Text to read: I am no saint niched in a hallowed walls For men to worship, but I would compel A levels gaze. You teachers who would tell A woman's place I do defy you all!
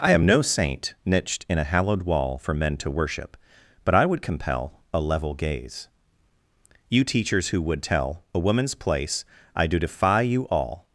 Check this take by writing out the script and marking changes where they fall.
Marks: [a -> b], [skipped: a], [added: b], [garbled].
I am no saint niched in a hallowed [walls -> wall] For men to worship, but I would compel A [levels -> level] gaze. You teachers who would tell A woman's place I do defy you all!